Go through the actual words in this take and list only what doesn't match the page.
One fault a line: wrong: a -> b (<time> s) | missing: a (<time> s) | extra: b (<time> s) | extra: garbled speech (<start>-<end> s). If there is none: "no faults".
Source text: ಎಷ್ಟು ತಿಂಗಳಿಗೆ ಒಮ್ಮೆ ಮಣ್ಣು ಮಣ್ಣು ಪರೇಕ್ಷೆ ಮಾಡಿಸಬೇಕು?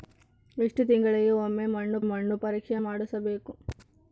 no faults